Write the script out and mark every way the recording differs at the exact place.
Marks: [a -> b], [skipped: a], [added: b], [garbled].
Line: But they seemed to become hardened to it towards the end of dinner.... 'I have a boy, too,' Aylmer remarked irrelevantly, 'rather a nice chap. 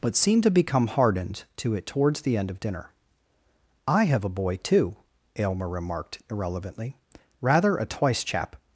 But [skipped: they] seemed to become hardened to it towards the end of dinner.... 'I have a boy, too,' Aylmer remarked irrelevantly, 'rather a [nice -> twice] chap.